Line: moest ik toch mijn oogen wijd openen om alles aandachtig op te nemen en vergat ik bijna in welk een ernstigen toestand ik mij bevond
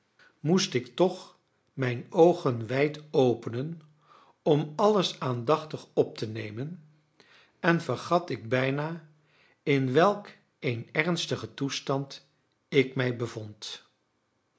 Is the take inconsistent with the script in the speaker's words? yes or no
no